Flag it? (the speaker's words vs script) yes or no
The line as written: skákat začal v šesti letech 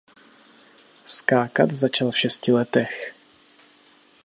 no